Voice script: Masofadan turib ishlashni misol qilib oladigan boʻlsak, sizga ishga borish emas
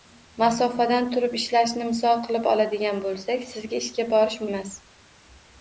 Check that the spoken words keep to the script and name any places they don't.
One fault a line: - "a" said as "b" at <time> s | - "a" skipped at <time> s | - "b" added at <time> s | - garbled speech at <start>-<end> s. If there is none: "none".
none